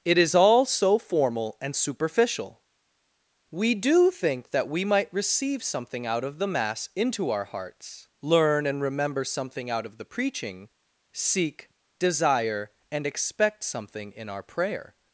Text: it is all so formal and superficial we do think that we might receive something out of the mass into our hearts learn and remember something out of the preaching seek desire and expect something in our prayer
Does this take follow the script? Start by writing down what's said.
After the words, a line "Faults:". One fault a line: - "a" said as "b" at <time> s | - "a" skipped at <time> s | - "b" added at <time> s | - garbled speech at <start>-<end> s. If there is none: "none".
it is all so formal and superficial we do think that we might receive something out of the mass into our hearts learn and remember something out of the preaching seek desire and expect something in our prayer
Faults:
none